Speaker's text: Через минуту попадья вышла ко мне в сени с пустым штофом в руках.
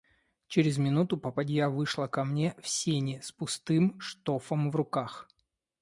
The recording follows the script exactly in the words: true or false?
true